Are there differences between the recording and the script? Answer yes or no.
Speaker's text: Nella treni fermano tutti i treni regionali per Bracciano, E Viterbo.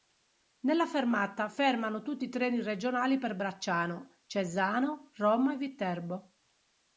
yes